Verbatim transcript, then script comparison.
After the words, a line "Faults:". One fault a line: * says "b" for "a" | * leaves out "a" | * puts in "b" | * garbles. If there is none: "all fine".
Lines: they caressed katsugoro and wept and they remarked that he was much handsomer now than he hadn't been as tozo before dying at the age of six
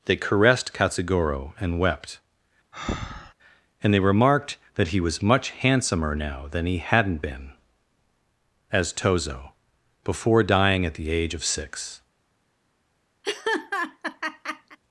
they caressed katsugoro and wept and they remarked that he was much handsomer now than he hadn't been as tozo before dying at the age of six
Faults:
all fine